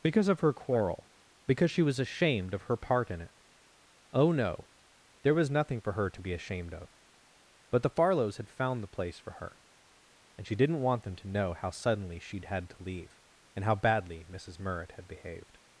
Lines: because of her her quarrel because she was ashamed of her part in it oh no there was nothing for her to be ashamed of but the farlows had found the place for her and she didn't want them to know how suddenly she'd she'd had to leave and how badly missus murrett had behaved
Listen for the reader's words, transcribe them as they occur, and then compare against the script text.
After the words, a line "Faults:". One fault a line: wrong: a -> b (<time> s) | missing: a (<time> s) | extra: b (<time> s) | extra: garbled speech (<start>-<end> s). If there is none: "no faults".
because of her quarrel because she was ashamed of her part in it oh no there was nothing for her to be ashamed of but the farlows had found the place for her and she didn't want them to know how suddenly she'd had to leave and how badly missus murrett had behaved
Faults:
missing: her (0.5 s)
missing: she'd (12.4 s)